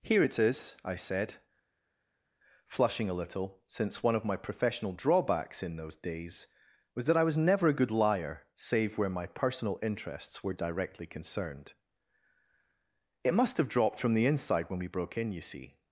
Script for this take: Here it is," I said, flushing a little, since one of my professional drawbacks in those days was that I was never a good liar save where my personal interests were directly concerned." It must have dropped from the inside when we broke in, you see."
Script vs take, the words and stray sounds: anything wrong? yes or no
no